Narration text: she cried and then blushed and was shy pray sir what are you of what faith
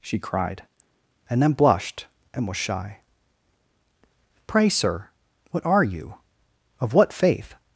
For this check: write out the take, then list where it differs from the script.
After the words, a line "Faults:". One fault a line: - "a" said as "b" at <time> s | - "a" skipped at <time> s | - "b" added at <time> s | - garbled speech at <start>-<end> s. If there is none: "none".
she cried and then blushed and was shy pray sir what are you of what faith
Faults:
none